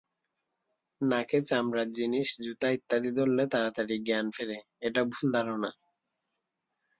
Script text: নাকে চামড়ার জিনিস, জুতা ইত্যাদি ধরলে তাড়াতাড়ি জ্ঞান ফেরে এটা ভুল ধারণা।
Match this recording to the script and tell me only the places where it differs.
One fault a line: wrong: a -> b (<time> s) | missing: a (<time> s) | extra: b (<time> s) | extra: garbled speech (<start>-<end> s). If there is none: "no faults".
no faults